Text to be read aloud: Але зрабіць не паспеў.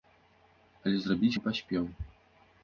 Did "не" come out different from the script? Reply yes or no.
no